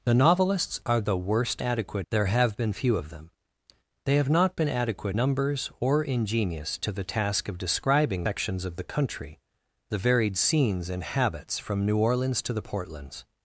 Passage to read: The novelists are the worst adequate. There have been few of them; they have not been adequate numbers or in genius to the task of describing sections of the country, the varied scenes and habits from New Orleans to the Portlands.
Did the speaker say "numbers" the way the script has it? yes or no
yes